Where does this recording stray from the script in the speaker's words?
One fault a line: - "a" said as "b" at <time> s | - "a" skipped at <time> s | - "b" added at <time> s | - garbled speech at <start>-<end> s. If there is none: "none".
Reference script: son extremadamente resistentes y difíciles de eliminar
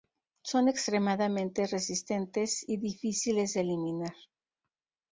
none